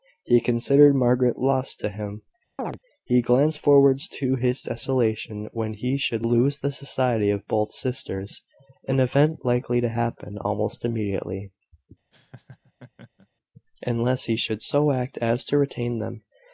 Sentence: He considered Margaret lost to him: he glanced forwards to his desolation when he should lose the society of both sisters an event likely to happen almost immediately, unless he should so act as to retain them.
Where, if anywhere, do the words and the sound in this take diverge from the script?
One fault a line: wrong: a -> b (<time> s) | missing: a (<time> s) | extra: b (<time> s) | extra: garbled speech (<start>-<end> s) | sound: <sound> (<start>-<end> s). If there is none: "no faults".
sound: chirp (2.6-2.8 s)
sound: laugh (12.1-13.3 s)